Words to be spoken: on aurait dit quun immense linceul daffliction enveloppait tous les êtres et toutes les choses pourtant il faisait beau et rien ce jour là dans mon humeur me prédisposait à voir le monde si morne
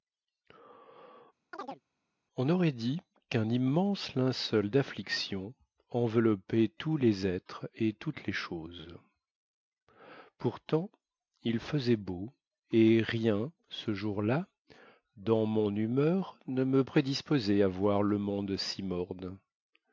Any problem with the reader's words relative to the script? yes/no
yes